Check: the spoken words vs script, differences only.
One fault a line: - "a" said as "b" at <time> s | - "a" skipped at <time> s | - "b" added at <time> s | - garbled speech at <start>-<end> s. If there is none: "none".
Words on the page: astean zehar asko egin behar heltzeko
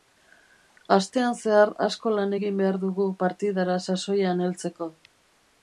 - "lan" added at 2.1 s
- "dugu partidara sasoian" added at 2.8 s